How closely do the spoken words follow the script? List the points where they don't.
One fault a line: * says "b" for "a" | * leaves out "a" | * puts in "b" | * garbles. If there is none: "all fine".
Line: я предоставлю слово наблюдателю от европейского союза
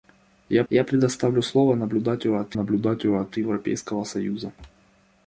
* puts in "я"
* puts in "наблюдателю от"